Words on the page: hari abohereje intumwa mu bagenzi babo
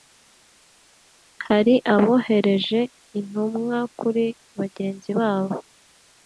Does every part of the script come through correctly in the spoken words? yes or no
no